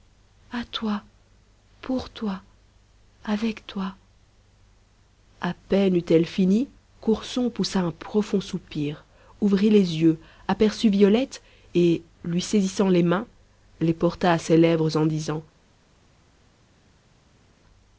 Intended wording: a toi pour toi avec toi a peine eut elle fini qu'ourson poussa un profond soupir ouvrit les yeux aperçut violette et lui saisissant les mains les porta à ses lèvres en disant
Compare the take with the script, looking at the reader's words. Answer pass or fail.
pass